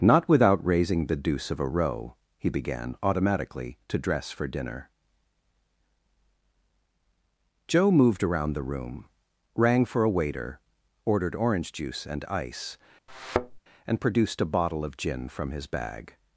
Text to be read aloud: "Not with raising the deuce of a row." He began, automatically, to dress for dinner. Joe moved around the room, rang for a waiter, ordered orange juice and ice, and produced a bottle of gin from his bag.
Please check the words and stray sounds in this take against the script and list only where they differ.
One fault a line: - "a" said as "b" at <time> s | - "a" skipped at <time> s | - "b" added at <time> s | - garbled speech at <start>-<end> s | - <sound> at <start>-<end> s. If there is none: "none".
- "with" said as "without" at 0.3 s
- thud at 13.1-13.6 s